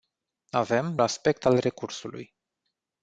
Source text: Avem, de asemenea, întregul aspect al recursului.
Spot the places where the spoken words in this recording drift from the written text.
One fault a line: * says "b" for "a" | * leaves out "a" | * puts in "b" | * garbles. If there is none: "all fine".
* leaves out "de asemenea întregul"